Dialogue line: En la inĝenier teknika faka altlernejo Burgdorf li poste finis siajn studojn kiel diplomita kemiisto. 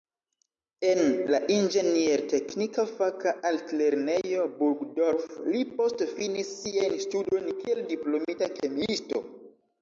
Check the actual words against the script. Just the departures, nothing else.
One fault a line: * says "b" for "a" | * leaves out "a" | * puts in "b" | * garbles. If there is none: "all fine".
all fine